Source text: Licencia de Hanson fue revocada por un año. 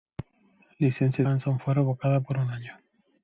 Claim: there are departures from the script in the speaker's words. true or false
true